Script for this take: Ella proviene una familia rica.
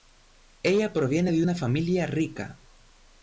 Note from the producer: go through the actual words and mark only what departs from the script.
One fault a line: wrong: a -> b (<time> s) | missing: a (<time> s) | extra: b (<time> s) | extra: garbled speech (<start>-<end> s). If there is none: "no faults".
extra: de (1.3 s)